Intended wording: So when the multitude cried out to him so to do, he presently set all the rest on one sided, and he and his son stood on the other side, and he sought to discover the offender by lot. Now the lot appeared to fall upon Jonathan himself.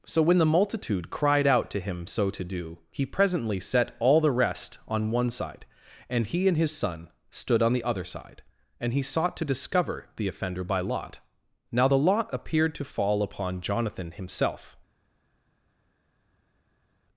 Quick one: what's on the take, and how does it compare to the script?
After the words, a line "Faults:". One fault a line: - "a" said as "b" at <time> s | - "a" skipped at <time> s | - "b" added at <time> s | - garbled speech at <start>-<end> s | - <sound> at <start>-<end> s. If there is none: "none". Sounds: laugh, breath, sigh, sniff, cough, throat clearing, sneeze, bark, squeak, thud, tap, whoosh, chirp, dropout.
So when the multitude cried out to him so to do, he presently set all the rest on one side, and he and his son stood on the other side, and he sought to discover the offender by lot. Now the lot appeared to fall upon Jonathan himself.
Faults:
- "sided" said as "side" at 5.3 s